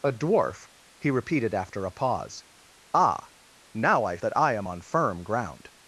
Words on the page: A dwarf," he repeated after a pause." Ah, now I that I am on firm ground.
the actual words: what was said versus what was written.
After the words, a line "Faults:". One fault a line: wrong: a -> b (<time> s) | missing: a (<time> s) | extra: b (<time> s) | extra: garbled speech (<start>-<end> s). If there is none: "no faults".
A dwarf," he repeated after a pause." Ah, now I that I am on firm ground.
Faults:
no faults